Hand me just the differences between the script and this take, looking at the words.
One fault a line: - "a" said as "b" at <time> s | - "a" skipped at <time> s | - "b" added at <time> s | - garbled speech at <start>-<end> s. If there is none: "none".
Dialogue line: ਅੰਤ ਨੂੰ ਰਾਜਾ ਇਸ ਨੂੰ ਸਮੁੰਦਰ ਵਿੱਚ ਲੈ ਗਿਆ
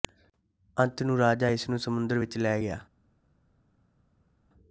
none